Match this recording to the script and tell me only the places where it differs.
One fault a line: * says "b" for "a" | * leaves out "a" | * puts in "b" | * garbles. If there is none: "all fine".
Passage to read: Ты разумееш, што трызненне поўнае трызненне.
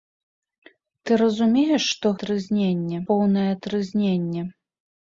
all fine